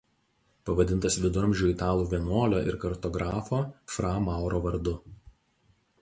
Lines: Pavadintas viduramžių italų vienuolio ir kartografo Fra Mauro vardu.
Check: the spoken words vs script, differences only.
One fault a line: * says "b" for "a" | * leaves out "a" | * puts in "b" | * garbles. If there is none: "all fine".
all fine